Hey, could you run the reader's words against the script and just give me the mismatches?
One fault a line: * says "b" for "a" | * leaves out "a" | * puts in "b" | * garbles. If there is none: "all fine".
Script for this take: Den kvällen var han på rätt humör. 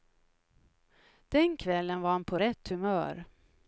all fine